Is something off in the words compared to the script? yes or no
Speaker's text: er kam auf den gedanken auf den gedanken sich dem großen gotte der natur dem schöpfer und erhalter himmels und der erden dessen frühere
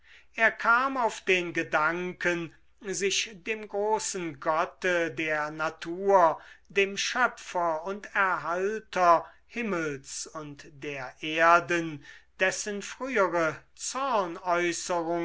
yes